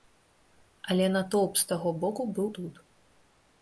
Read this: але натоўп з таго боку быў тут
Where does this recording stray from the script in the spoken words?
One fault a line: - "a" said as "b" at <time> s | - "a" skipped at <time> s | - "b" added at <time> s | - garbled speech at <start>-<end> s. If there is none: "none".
none